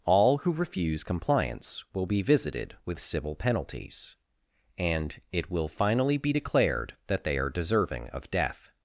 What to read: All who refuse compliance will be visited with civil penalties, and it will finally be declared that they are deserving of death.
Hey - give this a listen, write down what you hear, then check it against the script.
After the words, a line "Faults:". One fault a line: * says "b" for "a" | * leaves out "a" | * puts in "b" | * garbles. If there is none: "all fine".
All who refuse compliance will be visited with civil penalties, and it will finally be declared that they are deserving of death.
Faults:
all fine